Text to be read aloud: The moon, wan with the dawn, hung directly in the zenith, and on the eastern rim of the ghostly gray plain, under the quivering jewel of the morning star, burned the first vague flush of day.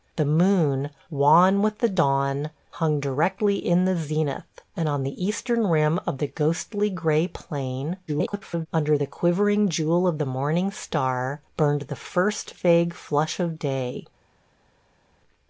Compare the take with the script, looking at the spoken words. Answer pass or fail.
fail